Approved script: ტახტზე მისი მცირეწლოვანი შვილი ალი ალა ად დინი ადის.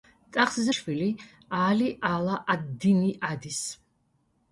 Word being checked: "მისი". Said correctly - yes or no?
no